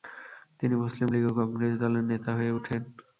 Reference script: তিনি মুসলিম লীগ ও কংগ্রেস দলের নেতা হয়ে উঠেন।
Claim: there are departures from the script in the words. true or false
false